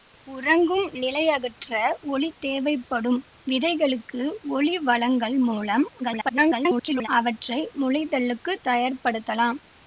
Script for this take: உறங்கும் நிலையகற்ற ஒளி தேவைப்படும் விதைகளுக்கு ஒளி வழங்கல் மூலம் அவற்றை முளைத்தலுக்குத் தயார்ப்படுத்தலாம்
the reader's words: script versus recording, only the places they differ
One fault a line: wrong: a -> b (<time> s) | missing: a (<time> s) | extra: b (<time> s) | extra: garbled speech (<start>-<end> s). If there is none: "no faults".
extra: garbled speech (6.0-7.1 s)